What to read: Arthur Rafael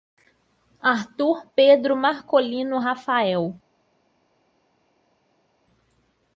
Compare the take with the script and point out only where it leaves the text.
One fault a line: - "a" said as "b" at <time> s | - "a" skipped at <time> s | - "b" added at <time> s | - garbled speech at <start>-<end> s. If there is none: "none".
- "Pedro Marcolino" added at 1.6 s